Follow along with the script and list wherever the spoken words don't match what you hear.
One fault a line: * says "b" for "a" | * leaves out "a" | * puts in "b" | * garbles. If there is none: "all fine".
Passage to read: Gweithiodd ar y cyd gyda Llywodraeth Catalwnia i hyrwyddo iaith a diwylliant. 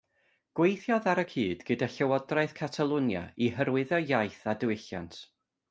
all fine